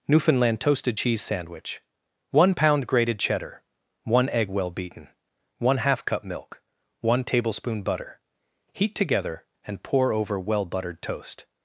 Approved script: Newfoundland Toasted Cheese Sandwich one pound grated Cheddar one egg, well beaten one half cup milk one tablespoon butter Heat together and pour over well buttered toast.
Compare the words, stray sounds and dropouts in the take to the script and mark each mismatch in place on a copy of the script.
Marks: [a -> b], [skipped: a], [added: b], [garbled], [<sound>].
Newfoundland Toasted Cheese Sandwich one pound grated Cheddar one egg, well beaten one half cup milk one tablespoon butter Heat together and pour over well buttered toast.